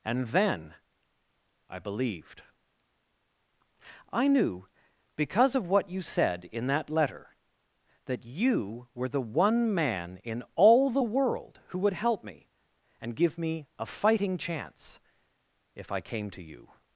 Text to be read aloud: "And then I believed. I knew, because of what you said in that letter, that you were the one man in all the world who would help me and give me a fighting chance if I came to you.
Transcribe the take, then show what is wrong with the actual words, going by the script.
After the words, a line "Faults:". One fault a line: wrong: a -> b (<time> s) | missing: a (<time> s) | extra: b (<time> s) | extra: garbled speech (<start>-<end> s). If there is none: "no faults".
"And then I believed. I knew, because of what you said in that letter, that you were the one man in all the world who would help me and give me a fighting chance if I came to you.
Faults:
no faults